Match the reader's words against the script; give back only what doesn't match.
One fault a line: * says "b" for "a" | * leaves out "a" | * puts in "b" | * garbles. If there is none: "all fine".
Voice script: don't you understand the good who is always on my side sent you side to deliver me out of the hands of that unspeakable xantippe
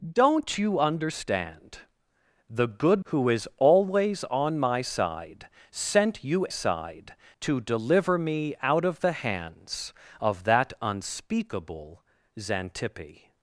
all fine